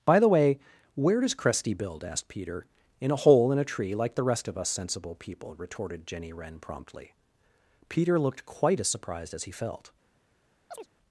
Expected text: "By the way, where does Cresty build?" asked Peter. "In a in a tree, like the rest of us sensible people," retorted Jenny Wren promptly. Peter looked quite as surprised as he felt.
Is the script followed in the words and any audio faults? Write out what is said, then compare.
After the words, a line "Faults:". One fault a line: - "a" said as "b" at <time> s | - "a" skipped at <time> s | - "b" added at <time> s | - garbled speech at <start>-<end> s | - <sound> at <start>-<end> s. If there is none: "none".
"By the way, where does Cresty build?" asked Peter. "In a hole in a tree, like the rest of us sensible people," retorted Jenny Wren promptly. Peter looked quite as surprised as he felt.
Faults:
- "hole" added at 3.1 s
- chirp at 10.7-10.9 s